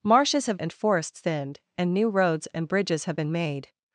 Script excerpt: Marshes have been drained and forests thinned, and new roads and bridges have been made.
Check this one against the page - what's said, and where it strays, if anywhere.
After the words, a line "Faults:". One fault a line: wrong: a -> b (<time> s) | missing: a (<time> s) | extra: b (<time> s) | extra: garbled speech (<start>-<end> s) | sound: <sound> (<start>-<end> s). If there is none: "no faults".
Marshes have and forests thinned, and new roads and bridges have been made.
Faults:
missing: been drained (0.6 s)